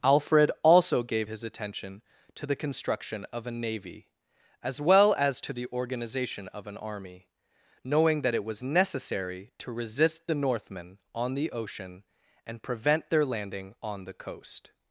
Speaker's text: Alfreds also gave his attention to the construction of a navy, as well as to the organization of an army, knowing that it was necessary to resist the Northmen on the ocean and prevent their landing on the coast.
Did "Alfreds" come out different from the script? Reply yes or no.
yes